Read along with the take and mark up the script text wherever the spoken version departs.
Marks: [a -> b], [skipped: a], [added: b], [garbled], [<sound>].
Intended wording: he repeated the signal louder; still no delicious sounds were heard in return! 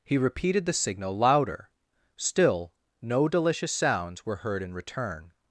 he repeated the signal louder; still no delicious sounds were heard in return!